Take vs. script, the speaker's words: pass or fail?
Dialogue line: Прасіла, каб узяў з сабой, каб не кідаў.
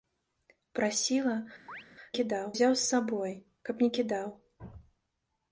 fail